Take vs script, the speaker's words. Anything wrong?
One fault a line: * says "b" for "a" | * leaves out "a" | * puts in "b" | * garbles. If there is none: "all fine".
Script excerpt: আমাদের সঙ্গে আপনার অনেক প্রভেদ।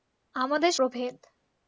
* leaves out "সঙ্গে আপনার অনেক"